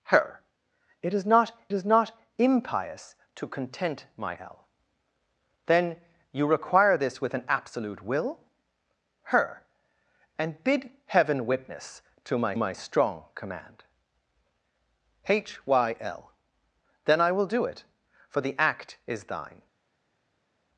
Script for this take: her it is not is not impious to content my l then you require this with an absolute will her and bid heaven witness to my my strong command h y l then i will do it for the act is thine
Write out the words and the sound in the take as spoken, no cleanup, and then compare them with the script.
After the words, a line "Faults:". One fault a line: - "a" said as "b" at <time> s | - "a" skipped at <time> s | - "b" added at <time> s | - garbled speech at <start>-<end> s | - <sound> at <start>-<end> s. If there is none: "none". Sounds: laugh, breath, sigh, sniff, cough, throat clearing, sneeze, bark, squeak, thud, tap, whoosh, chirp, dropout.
her it is not is not impious to content my l then you require this with an absolute will her and bid heaven witness to my my strong command h y l then i will do it for the act is thine
Faults:
none